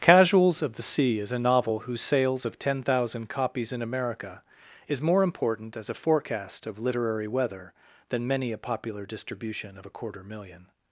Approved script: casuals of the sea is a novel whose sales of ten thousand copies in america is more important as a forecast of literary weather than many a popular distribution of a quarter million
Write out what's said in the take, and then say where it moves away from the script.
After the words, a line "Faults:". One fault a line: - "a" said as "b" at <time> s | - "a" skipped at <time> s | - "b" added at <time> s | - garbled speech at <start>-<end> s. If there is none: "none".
casuals of the sea is a novel whose sales of ten thousand copies in america is more important as a forecast of literary weather than many a popular distribution of a quarter million
Faults:
none